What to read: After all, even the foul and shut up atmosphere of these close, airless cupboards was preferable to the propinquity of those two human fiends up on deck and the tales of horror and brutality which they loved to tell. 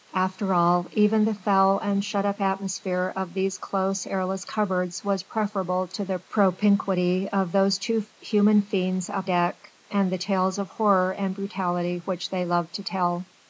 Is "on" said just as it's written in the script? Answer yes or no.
no